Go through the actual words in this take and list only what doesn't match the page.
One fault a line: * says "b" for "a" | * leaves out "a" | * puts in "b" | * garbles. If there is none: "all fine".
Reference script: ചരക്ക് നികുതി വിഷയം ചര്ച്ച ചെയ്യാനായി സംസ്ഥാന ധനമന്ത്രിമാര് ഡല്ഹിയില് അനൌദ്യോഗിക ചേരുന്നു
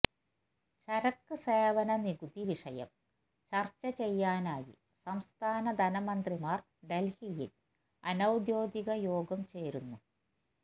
* puts in "സേവന"
* puts in "യോഗം"